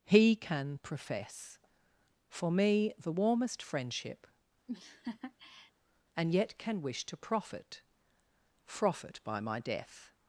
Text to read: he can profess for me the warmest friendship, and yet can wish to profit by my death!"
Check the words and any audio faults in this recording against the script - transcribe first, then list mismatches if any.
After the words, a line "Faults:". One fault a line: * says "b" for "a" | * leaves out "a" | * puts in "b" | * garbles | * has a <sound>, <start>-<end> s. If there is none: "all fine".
he can profess for me the warmest friendship, and yet can wish to profit profit by my death!"
Faults:
* has a laugh, 4.7-5.7 s
* puts in "profit"